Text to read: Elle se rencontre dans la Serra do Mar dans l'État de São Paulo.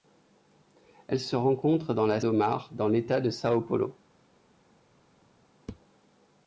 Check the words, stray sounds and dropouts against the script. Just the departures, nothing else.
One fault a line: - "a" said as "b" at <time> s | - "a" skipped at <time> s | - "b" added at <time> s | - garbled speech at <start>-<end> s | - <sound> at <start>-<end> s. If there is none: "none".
- "Serra" skipped at 2.2 s